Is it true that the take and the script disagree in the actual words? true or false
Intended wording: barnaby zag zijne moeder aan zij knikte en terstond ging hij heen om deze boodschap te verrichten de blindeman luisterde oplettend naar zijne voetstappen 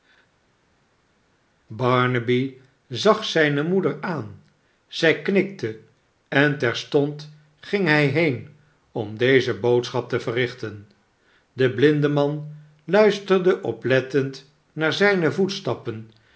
false